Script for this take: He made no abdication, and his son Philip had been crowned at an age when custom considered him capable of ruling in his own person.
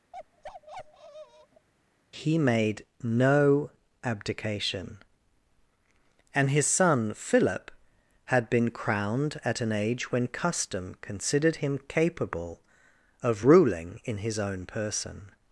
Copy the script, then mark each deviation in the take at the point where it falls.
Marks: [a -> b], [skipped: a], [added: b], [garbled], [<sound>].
[bark] He made no abdication, and his son Philip had been crowned at an age when custom considered him capable of ruling in his own person.